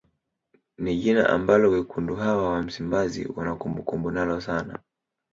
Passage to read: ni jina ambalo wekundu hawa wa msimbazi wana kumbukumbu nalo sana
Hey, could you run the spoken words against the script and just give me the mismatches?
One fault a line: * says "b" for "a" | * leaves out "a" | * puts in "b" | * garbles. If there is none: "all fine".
all fine